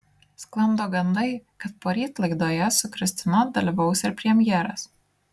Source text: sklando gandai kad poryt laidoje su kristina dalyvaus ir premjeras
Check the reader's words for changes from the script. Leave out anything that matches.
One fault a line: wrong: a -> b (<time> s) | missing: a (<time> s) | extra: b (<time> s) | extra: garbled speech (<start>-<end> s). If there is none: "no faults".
no faults